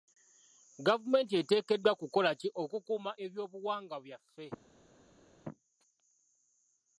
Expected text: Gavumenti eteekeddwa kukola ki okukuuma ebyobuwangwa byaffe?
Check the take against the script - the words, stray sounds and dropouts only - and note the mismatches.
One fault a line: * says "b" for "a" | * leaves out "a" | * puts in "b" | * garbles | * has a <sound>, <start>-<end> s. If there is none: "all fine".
all fine